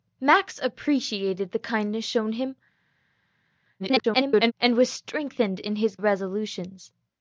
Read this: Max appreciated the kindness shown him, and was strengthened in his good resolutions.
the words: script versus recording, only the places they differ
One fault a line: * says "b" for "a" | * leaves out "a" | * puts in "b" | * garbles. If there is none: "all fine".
* garbles
* leaves out "good"